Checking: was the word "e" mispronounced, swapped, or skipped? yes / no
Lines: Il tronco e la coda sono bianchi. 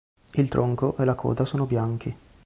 no